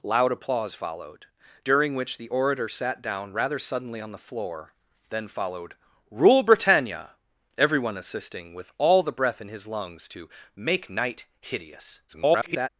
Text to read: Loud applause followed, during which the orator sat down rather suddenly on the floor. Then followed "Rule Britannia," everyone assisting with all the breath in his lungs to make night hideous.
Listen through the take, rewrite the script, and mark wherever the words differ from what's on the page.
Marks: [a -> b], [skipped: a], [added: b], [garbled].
Loud applause followed, during which the orator sat down rather suddenly on the floor. Then followed "Rule Britannia," everyone assisting with all the breath in his lungs to make night hideous. [garbled]